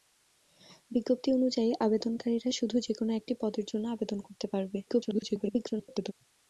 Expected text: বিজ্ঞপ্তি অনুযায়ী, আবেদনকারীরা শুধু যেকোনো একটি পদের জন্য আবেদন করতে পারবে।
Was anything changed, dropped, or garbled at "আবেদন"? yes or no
no